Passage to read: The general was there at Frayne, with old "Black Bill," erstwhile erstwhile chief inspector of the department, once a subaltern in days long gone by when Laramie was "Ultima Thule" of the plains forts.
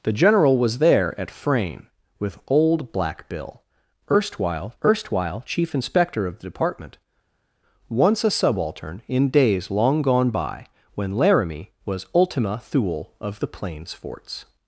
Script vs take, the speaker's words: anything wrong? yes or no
no